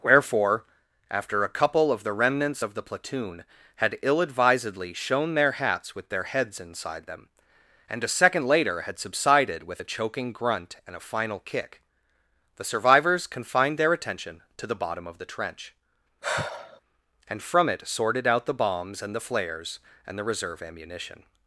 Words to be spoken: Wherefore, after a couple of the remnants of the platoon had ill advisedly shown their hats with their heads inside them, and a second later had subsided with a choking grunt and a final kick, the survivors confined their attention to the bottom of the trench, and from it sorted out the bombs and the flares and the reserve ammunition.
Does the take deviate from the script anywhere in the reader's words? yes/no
no